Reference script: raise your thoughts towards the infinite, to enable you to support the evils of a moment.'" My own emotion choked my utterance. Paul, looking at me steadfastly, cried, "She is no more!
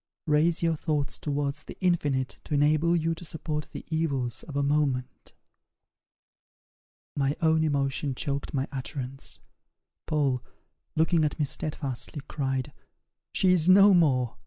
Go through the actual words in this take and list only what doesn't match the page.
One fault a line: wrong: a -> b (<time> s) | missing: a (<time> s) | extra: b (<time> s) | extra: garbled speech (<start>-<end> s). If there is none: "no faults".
no faults